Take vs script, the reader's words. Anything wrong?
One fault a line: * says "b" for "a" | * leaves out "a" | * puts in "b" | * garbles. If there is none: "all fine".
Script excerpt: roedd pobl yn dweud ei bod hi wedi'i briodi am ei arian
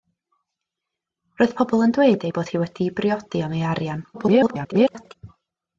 * garbles